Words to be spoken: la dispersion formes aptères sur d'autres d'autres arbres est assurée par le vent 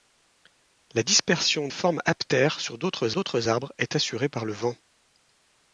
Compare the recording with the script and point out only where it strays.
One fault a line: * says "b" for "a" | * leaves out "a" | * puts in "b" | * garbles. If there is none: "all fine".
all fine